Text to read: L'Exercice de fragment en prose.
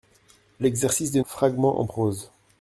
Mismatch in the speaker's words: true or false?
false